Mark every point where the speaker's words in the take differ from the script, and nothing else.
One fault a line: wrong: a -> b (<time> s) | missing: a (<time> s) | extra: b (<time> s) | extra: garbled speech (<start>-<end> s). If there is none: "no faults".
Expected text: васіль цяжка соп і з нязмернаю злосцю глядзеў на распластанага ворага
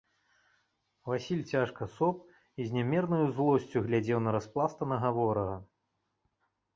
no faults